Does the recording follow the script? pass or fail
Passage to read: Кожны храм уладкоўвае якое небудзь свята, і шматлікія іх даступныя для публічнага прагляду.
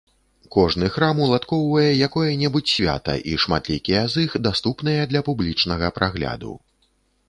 fail